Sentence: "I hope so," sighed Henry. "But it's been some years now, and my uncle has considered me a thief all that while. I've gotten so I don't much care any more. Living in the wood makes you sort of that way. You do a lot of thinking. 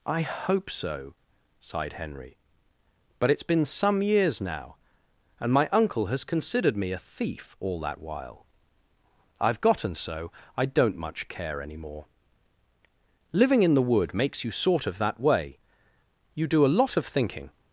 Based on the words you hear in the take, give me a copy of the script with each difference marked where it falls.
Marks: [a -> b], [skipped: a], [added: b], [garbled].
"I hope so," sighed Henry. "But it's been some years now, and my uncle has considered me a thief all that while. I've gotten so I don't much care any more. Living in the wood makes you sort of that way. You do a lot of thinking.